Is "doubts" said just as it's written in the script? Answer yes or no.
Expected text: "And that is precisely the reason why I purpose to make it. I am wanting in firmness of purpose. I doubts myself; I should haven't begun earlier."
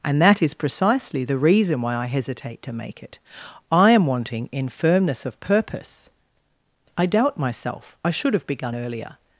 no